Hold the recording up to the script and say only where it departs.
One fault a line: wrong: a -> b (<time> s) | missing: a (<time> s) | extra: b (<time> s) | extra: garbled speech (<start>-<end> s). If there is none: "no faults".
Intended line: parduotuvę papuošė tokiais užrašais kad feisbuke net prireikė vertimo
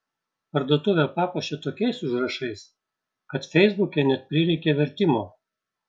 no faults